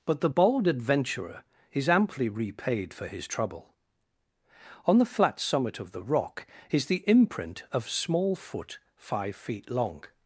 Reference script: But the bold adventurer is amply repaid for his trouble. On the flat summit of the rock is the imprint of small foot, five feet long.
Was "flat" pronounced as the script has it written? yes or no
yes